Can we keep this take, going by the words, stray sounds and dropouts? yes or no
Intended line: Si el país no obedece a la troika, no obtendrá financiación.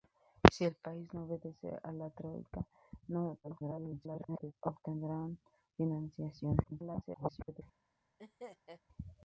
no